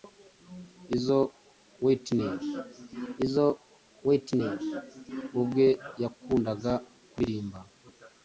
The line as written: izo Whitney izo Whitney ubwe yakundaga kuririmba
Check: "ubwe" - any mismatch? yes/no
no